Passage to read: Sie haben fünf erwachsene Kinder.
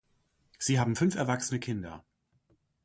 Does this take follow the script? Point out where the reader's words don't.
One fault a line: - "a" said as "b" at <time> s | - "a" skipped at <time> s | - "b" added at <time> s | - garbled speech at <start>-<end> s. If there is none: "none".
none